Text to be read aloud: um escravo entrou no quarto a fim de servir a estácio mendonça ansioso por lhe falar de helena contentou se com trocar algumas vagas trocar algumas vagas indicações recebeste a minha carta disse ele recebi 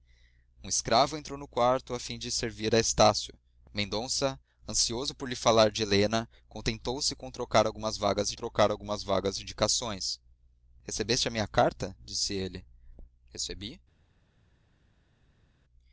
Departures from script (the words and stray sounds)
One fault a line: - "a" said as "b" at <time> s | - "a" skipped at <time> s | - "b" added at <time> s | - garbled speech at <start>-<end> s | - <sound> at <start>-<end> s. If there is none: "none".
none